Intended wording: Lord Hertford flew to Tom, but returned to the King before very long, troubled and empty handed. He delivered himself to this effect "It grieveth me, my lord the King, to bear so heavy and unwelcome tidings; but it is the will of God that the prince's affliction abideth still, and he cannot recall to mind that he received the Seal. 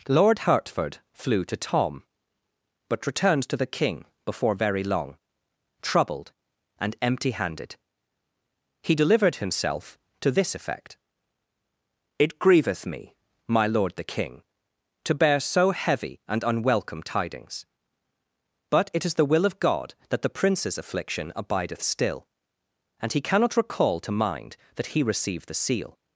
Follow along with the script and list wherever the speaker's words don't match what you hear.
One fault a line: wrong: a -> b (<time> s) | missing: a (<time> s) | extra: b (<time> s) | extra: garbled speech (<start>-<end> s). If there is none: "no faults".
no faults